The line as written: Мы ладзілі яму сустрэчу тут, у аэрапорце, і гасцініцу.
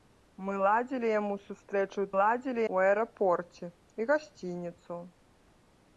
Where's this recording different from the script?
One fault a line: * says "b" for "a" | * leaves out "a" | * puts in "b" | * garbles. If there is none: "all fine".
* says "ладзілі" for "тут"